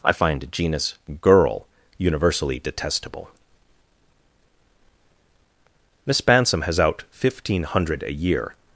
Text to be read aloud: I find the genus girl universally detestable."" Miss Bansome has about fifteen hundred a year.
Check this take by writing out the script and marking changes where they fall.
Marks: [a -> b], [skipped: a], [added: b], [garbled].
I find [skipped: the] genus girl universally detestable."" Miss Bansome has [about -> out] fifteen hundred a year.